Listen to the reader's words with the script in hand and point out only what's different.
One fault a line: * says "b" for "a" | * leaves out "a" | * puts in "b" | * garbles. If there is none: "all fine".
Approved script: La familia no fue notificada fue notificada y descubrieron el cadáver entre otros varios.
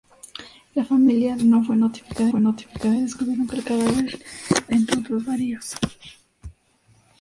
all fine